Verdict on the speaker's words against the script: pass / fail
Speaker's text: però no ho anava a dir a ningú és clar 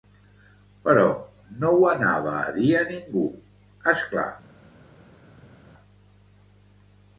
pass